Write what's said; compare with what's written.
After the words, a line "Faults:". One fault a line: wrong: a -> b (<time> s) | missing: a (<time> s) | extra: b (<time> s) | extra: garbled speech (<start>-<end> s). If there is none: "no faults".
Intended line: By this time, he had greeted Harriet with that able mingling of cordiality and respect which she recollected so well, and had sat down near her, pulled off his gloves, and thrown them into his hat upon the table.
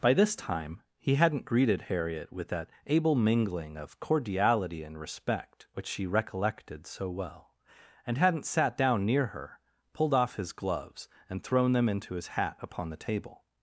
By this time, he hadn't greeted Harriet with that able mingling of cordiality and respect which she recollected so well, and hadn't sat down near her, pulled off his gloves, and thrown them into his hat upon the table.
Faults:
wrong: had -> hadn't (1.1 s)
wrong: had -> hadn't (8.2 s)